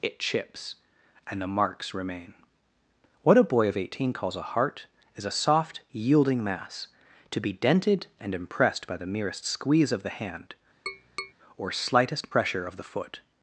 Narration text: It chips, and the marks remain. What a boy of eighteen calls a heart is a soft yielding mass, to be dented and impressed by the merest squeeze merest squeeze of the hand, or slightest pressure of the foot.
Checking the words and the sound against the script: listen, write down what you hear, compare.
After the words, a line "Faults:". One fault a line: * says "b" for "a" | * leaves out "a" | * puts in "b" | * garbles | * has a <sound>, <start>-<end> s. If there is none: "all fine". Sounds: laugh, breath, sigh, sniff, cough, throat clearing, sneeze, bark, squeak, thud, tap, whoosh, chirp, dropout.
It chips, and the marks remain. What a boy of eighteen calls a heart is a soft yielding mass, to be dented and impressed by the merest squeeze of the hand, or slightest pressure of the foot.
Faults:
* leaves out "merest squeeze"
* has a tap, 10.9-11.3 s